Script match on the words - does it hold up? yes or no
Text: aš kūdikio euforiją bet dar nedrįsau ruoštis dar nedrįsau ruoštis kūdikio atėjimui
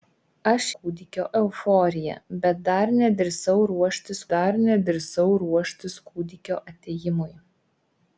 yes